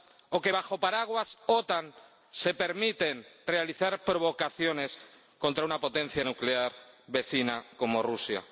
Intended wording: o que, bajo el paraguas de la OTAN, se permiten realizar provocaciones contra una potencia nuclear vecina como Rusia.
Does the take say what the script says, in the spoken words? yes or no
yes